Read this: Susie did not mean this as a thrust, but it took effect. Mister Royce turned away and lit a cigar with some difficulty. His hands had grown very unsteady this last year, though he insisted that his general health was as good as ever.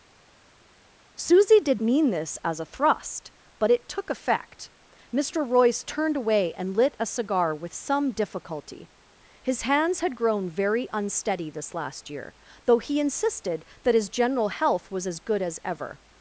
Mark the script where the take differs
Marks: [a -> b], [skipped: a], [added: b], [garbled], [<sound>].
Susie did [skipped: not] mean this as a thrust, but it took effect. Mister Royce turned away and lit a cigar with some difficulty. His hands had grown very unsteady this last year, though he insisted that his general health was as good as ever.